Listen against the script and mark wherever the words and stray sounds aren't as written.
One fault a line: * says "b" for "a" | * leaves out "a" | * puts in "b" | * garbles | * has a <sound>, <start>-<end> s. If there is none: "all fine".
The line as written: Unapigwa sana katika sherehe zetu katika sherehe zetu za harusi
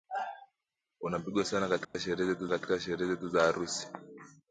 * has a dropout, 1.8-1.9 s